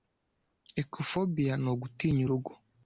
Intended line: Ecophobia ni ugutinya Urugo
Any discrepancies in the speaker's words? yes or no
no